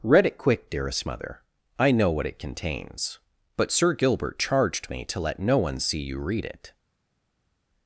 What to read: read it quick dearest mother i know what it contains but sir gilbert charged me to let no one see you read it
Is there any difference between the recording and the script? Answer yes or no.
no